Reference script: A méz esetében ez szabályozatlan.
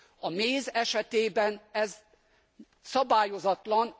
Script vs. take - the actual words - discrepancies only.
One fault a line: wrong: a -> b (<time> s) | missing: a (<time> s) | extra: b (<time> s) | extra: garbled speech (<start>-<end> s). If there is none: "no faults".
no faults